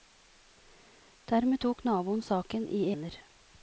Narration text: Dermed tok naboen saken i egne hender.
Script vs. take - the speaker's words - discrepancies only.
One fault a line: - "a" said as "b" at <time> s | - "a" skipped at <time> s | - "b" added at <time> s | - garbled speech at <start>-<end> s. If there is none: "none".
- "egne" skipped at 2.8 s